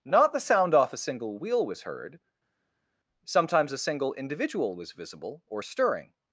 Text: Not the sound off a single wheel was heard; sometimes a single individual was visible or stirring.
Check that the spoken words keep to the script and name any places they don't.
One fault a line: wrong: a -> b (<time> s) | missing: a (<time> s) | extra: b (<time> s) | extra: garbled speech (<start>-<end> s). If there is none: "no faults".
no faults